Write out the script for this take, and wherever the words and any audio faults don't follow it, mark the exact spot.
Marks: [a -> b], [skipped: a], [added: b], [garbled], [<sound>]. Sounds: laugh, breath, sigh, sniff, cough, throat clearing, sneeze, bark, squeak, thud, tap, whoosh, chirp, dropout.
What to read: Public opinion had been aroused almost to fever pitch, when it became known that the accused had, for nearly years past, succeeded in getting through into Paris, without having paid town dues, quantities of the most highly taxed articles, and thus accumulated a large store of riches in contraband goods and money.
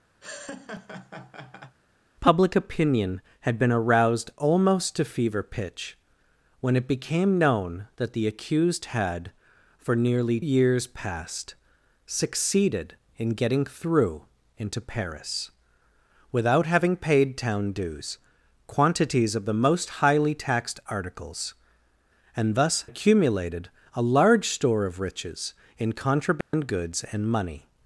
[laugh] Public opinion had been aroused almost to fever pitch, when it became known that the accused had, for nearly years past, succeeded in getting through into Paris, without having paid town dues, quantities of the most highly taxed articles, and thus accumulated a large store of riches in contraband [dropout] goods and money.